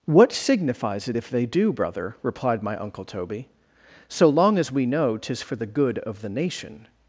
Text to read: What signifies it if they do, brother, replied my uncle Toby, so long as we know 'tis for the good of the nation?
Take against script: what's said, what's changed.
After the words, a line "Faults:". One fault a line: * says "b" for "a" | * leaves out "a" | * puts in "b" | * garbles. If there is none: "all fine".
What signifies it if they do, brother, replied my uncle Toby, so long as we know 'tis for the good of the nation?
Faults:
all fine